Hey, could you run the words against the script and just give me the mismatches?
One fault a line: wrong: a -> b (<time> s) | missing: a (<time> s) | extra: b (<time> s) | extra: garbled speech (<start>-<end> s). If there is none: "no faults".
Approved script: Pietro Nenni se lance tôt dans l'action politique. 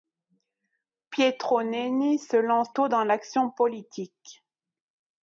no faults